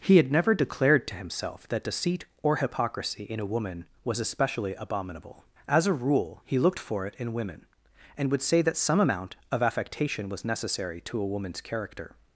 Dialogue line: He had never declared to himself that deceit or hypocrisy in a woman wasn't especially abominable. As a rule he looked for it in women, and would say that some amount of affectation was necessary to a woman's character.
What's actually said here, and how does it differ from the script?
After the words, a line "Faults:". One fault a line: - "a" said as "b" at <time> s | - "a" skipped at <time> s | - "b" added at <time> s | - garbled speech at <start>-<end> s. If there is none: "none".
He had never declared to himself that deceit or hypocrisy in a woman was especially abominable. As a rule he looked for it in women, and would say that some amount of affectation was necessary to a woman's character.
Faults:
- "wasn't" said as "was" at 4.0 s